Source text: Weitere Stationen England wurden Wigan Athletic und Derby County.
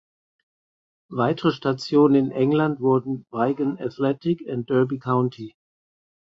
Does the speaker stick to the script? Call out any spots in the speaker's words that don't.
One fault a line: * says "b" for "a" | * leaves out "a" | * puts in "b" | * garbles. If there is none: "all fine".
* puts in "in"